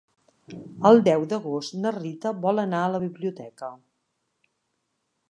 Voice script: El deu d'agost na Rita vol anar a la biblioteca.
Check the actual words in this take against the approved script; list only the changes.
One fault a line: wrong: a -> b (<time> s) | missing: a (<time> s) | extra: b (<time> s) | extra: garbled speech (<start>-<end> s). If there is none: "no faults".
no faults